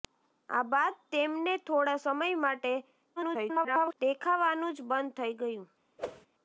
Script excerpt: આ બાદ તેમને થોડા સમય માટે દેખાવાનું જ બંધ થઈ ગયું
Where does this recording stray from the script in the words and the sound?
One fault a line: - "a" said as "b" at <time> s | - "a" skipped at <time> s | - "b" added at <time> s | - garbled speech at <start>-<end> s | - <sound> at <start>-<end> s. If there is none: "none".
- garbled speech at 3.2-3.9 s
- whoosh at 6.0-6.3 s